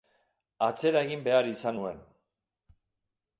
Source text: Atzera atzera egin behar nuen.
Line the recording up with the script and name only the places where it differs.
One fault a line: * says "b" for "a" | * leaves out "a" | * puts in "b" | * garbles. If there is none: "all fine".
* leaves out "atzera"
* puts in "izan"